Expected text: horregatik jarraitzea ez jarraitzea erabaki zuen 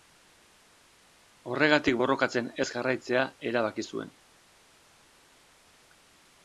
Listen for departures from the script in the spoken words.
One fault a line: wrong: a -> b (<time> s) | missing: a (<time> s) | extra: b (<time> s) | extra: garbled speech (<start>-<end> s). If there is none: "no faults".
wrong: jarraitzea -> borrokatzen (2.0 s)